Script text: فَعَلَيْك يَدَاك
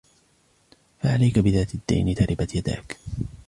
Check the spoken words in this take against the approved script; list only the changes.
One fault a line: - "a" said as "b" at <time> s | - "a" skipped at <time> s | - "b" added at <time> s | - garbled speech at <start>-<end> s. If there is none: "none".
- "بِذَاتِ الدِّينِ تَرِبَتْ" added at 1.4 s